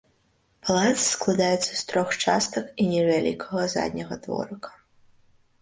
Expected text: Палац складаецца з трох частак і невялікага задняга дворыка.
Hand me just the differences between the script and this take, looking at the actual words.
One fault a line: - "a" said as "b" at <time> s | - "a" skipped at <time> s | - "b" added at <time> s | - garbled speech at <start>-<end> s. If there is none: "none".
none